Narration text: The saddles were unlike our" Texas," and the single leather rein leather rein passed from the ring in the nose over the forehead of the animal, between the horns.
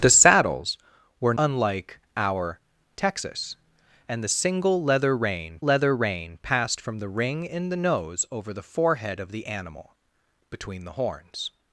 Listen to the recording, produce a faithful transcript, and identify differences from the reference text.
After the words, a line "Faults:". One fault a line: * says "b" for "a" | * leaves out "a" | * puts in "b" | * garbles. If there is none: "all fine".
The saddles were unlike our" Texas," and the single leather rein leather rein passed from the ring in the nose over the forehead of the animal, between the horns.
Faults:
all fine